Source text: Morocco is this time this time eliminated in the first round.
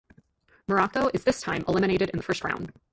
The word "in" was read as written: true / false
true